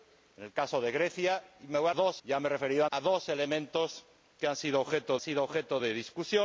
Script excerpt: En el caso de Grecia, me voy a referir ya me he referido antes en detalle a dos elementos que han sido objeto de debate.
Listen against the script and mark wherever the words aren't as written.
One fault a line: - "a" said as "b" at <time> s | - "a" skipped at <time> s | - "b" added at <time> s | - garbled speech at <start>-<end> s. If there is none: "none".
- "referir" said as "dos" at 1.9 s
- "antes en detalle" skipped at 2.9 s
- "sido objeto" added at 5.2 s